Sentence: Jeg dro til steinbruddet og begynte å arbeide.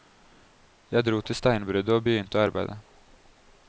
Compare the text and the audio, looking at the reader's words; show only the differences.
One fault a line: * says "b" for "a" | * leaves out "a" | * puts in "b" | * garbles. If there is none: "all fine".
all fine